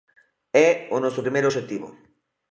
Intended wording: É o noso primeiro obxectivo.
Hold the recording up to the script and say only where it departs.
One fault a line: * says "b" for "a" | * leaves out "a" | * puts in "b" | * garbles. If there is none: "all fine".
all fine